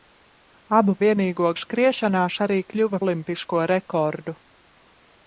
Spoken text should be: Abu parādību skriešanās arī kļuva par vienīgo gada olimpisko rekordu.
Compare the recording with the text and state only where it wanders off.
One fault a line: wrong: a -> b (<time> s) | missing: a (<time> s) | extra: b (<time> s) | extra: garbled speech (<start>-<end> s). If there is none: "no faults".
wrong: parādību -> vienīgo (1.1 s)
missing: par vienīgo gada (3.0 s)